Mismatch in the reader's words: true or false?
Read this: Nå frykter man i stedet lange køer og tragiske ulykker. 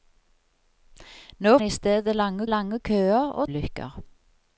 true